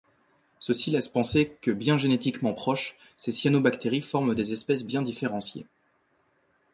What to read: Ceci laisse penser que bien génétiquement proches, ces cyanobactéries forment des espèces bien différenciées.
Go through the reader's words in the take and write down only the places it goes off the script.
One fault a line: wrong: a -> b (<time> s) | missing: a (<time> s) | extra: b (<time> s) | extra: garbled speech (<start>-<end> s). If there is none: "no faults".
no faults